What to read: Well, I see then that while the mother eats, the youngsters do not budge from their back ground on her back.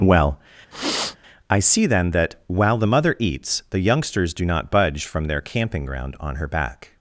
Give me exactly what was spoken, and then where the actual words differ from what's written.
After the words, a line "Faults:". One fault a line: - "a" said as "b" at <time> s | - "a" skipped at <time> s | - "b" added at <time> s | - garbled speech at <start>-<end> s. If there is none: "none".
Well, I see then that while the mother eats, the youngsters do not budge from their camping ground on her back.
Faults:
- "back" said as "camping" at 5.4 s